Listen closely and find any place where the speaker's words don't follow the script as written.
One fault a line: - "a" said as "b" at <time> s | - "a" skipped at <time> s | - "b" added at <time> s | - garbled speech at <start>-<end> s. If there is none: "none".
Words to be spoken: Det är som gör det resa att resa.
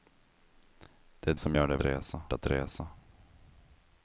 none